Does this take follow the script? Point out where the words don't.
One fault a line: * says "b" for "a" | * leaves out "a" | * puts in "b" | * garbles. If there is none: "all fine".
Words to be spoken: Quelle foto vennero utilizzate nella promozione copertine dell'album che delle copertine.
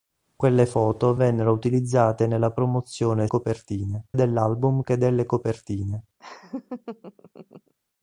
all fine